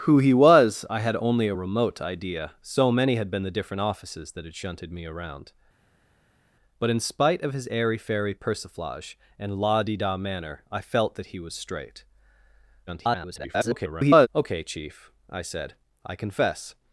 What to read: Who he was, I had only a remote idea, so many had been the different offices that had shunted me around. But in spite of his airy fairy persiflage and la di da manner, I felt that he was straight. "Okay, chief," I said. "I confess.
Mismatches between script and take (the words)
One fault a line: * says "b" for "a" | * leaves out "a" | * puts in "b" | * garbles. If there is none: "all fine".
* garbles